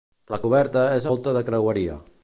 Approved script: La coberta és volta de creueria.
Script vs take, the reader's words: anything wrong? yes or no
no